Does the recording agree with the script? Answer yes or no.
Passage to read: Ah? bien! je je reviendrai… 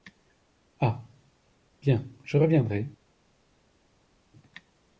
no